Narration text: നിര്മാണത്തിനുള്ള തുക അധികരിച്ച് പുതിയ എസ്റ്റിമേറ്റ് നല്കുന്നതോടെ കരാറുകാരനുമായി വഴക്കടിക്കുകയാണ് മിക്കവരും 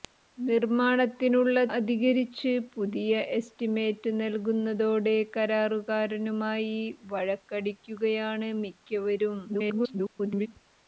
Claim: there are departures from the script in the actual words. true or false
true